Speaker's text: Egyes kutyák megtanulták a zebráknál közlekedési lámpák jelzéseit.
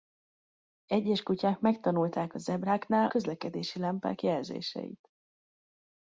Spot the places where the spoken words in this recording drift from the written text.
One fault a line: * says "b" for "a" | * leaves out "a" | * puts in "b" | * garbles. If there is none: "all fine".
all fine